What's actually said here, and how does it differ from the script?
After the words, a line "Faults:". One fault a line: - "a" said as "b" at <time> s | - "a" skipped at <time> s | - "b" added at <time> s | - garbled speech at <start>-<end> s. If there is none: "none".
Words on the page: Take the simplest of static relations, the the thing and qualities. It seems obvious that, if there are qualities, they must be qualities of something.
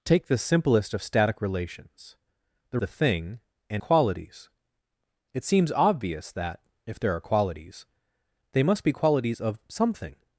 Take the simplest of static relations, the the thing and qualities. It seems obvious that, if there are qualities, they must be qualities of something.
Faults:
none